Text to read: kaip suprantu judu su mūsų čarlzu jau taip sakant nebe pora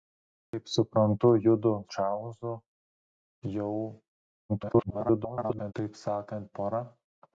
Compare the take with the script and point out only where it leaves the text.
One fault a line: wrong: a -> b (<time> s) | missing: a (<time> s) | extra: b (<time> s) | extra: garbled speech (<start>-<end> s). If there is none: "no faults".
missing: su mūsų (1.7 s)
extra: garbled speech (4.5-5.7 s)
missing: nebe (6.5 s)